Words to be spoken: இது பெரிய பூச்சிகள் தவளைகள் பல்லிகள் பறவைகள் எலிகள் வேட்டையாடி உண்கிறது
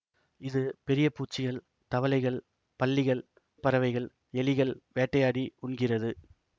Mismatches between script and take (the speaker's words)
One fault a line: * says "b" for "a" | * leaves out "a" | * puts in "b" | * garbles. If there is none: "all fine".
all fine